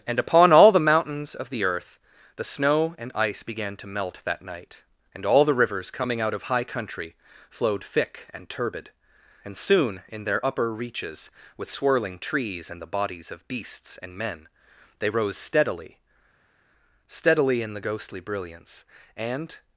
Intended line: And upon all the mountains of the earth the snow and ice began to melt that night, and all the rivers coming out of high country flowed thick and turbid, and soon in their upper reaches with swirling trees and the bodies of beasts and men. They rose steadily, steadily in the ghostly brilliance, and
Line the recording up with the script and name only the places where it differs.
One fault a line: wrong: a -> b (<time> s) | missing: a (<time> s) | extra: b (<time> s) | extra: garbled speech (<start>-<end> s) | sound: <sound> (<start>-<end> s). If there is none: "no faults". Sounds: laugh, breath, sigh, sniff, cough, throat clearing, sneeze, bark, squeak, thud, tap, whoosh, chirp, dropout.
no faults